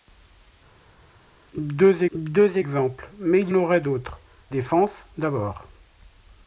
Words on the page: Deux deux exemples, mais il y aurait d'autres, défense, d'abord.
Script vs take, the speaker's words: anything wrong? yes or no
no